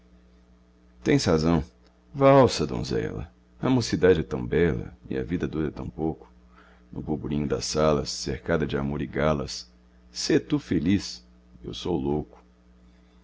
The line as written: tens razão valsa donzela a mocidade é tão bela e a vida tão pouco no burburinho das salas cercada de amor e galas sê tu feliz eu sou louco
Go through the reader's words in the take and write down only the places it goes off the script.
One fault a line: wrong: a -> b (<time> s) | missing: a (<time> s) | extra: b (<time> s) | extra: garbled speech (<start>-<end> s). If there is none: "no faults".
extra: dura (5.5 s)